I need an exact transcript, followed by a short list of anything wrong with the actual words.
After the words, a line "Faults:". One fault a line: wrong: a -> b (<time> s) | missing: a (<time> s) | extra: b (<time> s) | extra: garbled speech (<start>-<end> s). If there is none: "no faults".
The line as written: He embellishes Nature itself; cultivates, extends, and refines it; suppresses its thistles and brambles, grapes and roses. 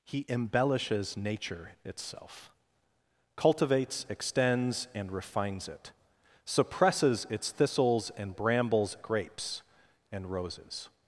He embellishes Nature itself; cultivates, extends, and refines it; suppresses its thistles and brambles, grapes and roses.
Faults:
no faults